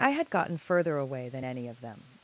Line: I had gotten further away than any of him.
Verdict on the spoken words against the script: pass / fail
fail